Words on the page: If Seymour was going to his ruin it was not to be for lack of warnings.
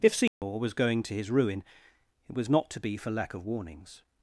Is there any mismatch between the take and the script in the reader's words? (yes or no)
no